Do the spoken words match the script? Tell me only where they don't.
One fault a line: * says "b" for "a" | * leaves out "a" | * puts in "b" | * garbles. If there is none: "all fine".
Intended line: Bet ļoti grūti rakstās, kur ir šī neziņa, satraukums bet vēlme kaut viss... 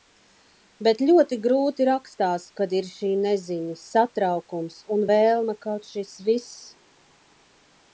* says "kad" for "kur"
* says "un" for "bet"
* puts in "šis"